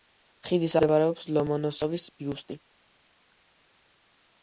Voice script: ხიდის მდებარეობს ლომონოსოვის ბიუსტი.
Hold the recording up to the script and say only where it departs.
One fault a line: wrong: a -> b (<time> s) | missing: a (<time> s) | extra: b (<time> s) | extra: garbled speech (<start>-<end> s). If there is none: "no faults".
no faults